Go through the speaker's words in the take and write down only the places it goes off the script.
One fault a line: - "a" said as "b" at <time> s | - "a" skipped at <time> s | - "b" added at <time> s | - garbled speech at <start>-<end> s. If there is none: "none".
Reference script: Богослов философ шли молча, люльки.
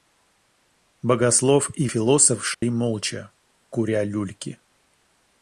- "и" added at 1.8 s
- "куря" added at 3.7 s